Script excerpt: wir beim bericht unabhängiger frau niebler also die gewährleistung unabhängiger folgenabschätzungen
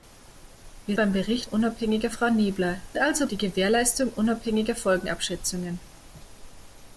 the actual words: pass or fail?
pass